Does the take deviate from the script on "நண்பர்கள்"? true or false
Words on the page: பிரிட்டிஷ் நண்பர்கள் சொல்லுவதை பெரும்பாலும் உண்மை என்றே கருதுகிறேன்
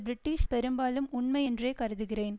true